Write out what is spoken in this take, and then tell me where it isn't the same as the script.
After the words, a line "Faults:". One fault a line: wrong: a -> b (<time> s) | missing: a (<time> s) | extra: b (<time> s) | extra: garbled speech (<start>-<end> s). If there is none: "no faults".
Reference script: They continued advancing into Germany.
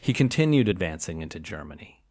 He continued advancing into Germany.
Faults:
wrong: They -> He (0.0 s)